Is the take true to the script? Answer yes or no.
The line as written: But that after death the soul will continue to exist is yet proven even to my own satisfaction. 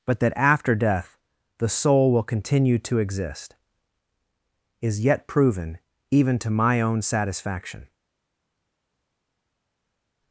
yes